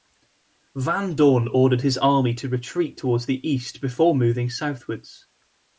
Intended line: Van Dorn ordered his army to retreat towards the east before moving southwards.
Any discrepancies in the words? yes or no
no